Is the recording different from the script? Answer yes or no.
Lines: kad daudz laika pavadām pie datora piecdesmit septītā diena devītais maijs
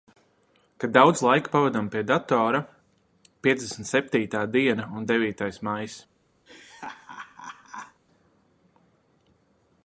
yes